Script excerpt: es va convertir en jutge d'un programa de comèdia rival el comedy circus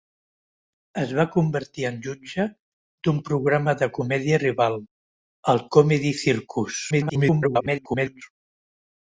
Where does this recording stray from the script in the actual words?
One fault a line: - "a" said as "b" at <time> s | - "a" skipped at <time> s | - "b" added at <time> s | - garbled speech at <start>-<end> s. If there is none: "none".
- garbled speech at 6.9-8.2 s